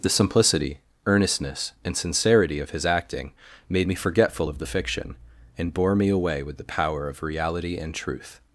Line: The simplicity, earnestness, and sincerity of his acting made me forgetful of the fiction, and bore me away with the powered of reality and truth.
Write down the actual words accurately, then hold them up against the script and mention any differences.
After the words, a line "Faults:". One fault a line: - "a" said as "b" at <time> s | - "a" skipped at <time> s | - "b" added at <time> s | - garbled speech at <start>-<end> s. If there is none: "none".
The simplicity, earnestness, and sincerity of his acting made me forgetful of the fiction, and bore me away with the power of reality and truth.
Faults:
- "powered" said as "power" at 6.6 s